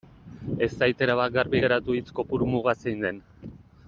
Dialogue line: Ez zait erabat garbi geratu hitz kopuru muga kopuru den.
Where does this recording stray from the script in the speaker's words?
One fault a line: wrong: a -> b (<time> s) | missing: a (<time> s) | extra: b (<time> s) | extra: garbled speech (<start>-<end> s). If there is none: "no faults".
wrong: kopuru -> zein (2.8 s)